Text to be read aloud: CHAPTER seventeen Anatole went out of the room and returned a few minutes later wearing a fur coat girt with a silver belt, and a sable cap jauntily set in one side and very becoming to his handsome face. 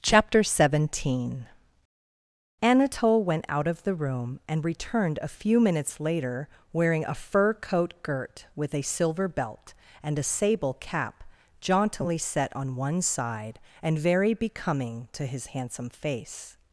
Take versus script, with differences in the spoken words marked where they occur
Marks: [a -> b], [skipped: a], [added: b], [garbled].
CHAPTER seventeen Anatole went out of the room and returned a few minutes later wearing a fur coat girt with a silver belt, and a sable cap jauntily set [in -> on] one side and very becoming to his handsome face.